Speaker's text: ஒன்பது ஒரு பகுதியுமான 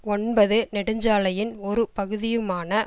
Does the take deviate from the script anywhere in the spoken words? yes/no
yes